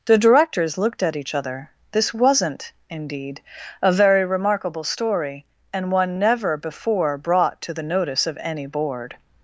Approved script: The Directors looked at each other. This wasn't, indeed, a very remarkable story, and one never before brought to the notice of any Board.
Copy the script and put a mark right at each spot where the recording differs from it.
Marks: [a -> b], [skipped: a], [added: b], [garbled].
The Directors looked at each other. This wasn't, indeed, a very remarkable story, and one never before brought to the notice of any Board.